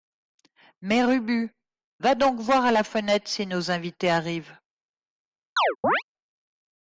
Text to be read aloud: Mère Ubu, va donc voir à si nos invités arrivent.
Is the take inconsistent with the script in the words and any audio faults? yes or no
yes